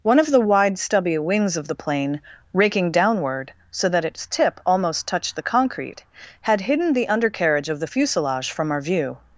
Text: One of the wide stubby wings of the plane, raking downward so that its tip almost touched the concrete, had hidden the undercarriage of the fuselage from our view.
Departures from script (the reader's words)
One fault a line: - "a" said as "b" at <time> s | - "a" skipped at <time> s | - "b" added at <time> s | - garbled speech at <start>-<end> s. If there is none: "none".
none